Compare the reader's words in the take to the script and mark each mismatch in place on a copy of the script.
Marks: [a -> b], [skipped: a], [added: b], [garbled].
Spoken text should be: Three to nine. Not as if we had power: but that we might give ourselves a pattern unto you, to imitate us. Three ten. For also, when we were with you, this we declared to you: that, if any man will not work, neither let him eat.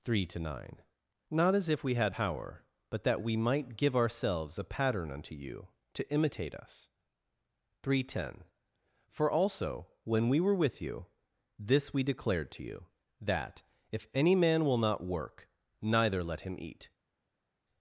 Three to nine. Not as if we had power: but that we might give ourselves a pattern unto you, to imitate us. Three ten. For also, when we were with you, this we declared to you: that, if any man will not work, neither let him eat.